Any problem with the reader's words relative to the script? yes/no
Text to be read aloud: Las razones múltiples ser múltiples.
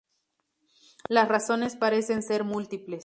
yes